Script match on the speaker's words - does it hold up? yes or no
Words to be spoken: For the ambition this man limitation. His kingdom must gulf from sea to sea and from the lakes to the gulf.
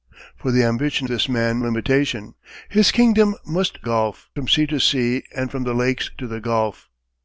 yes